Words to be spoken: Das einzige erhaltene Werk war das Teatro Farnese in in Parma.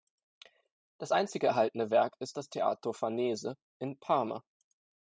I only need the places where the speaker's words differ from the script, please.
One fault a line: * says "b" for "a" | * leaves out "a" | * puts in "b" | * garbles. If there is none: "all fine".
* says "ist" for "war"
* leaves out "in"